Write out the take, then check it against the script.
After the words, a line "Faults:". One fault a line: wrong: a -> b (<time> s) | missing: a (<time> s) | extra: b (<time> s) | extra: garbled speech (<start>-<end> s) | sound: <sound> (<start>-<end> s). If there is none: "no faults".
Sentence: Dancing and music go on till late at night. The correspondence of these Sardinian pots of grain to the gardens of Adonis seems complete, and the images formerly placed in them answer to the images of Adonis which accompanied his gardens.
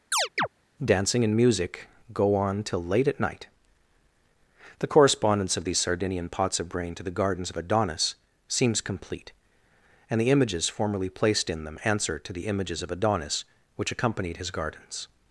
Dancing and music go on till late at night. The correspondence of these Sardinian pots of brain to the gardens of Adonis seems complete, and the images formerly placed in them answer to the images of Adonis which accompanied his gardens.
Faults:
sound: chirp (0.1-0.5 s)
wrong: grain -> brain (6.7 s)